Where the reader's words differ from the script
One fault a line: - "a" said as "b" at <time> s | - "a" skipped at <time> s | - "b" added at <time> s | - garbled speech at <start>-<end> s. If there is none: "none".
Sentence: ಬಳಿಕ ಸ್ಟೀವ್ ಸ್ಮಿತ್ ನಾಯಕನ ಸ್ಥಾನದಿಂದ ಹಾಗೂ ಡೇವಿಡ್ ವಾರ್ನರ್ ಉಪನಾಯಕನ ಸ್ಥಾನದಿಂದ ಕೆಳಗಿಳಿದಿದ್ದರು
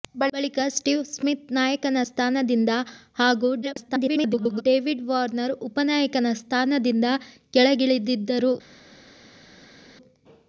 - garbled speech at 3.6-4.6 s